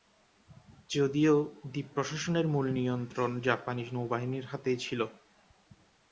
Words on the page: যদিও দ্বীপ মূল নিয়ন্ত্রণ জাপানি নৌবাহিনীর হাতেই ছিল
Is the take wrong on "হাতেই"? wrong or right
right